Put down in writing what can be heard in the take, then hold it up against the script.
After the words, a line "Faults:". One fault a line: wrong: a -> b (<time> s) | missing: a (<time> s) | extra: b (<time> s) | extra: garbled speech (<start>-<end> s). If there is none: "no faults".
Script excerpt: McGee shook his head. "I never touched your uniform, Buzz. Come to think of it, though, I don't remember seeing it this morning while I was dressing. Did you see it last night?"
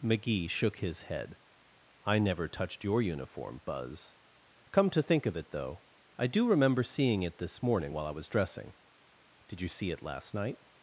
McGee shook his head. "I never touched your uniform, Buzz. Come to think of it, though, I do remember seeing it this morning while I was dressing. Did you see it last night?"
Faults:
wrong: don't -> do (6.3 s)